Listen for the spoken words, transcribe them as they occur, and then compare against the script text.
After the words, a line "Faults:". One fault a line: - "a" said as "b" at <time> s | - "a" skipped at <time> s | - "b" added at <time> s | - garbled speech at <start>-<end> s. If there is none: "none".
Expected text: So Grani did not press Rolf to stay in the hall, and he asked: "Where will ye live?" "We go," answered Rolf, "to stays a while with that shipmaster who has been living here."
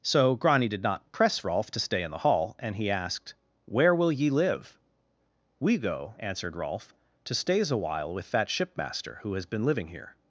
So Grani did not press Rolf to stay in the hall, and he asked: "Where will ye live?" "We go," answered Rolf, "to stays a while with that shipmaster who has been living here."
Faults:
none